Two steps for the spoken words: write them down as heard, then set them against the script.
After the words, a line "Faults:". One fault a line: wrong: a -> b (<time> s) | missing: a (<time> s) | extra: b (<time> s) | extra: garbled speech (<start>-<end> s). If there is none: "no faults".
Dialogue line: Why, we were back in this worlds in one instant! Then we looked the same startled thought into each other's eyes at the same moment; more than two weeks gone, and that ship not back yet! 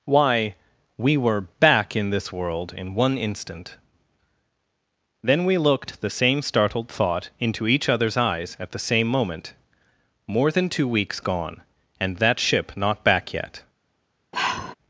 Why, we were back in this world in one instant! Then we looked the same startled thought into each other's eyes at the same moment; more than two weeks gone, and that ship not back yet!
Faults:
wrong: worlds -> world (2.3 s)